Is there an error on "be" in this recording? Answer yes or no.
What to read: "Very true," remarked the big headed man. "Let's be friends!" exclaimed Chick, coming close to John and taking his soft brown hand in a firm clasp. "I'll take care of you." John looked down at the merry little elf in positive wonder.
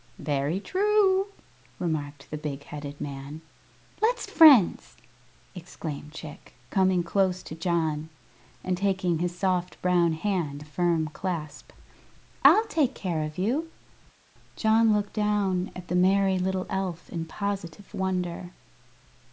yes